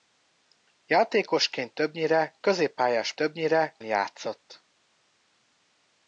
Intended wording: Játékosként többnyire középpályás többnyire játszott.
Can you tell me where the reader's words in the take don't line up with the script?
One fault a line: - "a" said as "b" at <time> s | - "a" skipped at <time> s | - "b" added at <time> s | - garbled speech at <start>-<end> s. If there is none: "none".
none